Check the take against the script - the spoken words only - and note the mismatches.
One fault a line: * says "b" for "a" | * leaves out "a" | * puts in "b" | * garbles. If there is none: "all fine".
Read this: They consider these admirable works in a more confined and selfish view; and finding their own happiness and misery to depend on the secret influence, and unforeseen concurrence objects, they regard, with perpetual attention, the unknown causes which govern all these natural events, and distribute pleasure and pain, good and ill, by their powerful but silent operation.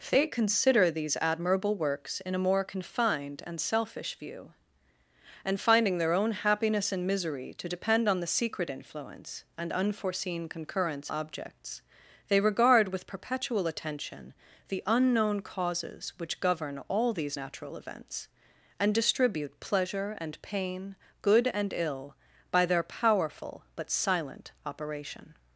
all fine